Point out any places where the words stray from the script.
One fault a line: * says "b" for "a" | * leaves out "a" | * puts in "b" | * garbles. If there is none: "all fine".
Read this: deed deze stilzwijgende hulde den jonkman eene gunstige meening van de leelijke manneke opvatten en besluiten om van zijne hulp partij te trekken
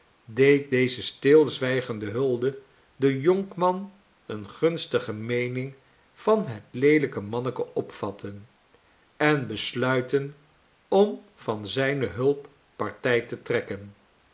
* says "het" for "de"